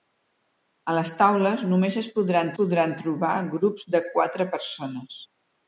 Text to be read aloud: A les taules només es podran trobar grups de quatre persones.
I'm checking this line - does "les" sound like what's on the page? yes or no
yes